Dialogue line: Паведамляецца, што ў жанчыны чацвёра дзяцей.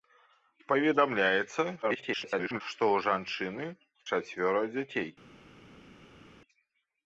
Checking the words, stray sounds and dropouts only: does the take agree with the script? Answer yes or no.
no